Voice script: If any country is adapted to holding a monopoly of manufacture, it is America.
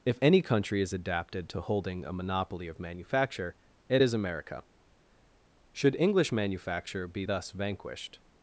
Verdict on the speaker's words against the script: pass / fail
fail